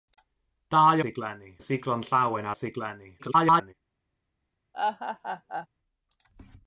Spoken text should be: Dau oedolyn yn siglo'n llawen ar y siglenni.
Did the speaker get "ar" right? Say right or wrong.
wrong